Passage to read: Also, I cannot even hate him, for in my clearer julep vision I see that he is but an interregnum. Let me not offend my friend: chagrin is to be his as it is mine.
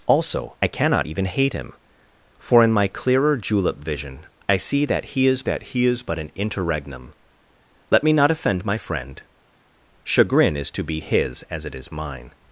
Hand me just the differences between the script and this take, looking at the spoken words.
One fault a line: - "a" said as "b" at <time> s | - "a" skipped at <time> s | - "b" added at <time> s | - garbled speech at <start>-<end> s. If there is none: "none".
- "that he is" added at 5.4 s